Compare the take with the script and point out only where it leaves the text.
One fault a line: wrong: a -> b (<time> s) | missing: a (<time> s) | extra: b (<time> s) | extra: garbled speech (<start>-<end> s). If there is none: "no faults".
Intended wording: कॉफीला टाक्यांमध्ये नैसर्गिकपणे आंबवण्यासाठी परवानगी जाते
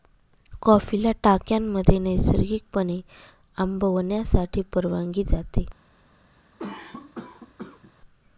no faults